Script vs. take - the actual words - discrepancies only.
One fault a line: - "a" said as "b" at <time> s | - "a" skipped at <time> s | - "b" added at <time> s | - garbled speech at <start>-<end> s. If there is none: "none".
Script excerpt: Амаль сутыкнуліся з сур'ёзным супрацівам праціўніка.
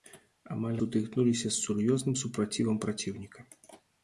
none